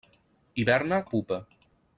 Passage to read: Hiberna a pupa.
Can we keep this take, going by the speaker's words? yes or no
yes